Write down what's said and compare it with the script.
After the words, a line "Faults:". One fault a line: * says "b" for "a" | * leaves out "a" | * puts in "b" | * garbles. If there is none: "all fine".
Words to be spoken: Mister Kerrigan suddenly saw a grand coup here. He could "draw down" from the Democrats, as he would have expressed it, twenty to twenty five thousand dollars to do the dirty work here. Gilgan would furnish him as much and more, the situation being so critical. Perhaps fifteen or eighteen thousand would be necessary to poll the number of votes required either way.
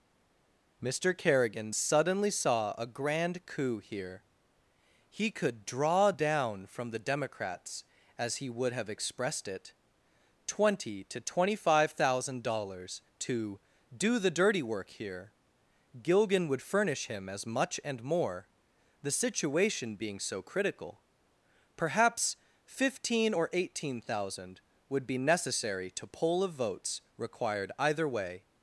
Mister Kerrigan suddenly saw a grand coup here. He could "draw down" from the Democrats, as he would have expressed it, twenty to twenty five thousand dollars to do the dirty work here. Gilgan would furnish him as much and more, the situation being so critical. Perhaps fifteen or eighteen thousand would be necessary to poll of votes required either way.
Faults:
* leaves out "the number"